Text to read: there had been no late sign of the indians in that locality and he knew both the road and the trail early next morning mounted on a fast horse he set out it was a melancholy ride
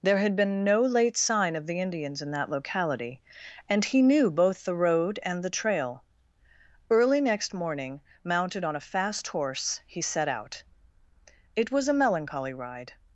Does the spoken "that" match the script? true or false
true